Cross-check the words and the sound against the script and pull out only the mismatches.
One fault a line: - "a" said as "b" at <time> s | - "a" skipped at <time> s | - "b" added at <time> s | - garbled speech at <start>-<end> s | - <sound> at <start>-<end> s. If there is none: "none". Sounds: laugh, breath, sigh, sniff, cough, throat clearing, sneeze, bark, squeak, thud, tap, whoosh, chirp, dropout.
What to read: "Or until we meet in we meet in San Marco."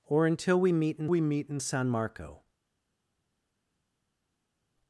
none